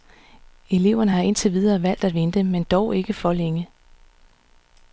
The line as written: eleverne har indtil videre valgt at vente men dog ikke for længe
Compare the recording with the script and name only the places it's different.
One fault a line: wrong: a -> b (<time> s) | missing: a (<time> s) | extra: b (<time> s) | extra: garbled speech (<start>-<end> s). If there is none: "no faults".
no faults